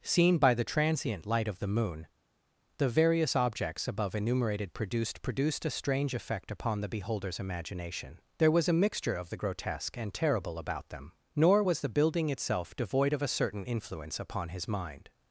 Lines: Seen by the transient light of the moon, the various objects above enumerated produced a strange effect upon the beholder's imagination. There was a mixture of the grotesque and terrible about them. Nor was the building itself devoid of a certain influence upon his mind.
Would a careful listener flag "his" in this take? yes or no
no